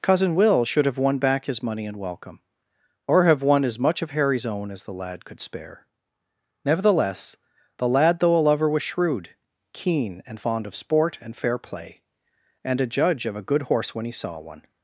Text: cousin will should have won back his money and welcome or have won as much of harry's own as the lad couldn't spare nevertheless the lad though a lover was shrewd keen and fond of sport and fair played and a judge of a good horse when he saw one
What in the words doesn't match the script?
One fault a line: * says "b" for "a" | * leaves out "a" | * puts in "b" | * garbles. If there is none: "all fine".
* says "could" for "couldn't"
* says "play" for "played"